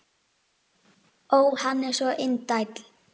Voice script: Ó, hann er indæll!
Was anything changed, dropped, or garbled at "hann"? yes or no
no